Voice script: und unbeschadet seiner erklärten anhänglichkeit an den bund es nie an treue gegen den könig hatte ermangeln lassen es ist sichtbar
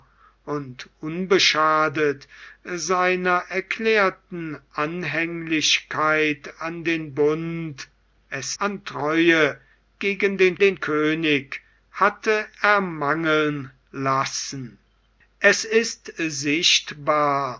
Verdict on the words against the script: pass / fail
fail